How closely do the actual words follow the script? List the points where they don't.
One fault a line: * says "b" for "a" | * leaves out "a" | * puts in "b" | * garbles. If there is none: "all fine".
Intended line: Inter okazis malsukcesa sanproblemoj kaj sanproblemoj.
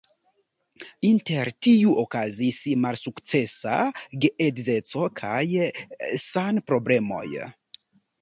* puts in "tiu"
* says "geedzeco" for "sanproblemoj"